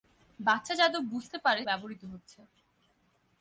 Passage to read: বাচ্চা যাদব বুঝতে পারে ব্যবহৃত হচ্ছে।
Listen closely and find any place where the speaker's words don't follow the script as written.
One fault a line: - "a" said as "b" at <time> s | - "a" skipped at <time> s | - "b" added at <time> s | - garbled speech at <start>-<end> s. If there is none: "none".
none